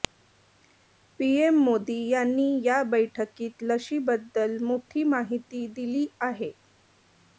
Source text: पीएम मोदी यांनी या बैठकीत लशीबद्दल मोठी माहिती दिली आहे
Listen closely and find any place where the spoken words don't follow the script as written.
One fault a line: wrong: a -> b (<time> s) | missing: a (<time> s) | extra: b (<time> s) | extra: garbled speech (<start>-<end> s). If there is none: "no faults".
no faults